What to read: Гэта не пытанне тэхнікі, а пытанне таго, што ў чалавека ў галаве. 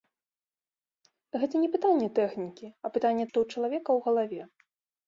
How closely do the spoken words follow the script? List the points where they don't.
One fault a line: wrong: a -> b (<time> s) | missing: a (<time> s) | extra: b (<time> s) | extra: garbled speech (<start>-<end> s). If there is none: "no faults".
missing: таго (3.2 s)